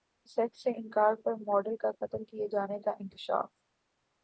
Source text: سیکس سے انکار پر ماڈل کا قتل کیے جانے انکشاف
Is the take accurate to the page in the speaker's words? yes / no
no